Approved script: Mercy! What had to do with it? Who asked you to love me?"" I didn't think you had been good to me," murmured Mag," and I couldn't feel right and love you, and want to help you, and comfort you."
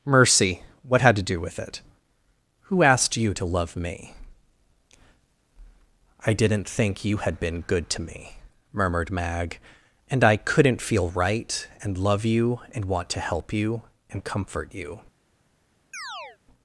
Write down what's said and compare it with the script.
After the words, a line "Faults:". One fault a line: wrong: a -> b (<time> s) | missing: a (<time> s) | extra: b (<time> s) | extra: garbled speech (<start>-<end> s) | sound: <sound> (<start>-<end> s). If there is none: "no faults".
Mercy! What had to do with it? Who asked you to love me?"" I didn't think you had been good to me," murmured Mag," and I couldn't feel right and love you, and want to help you, and comfort you."
Faults:
sound: chirp (15.9-16.4 s)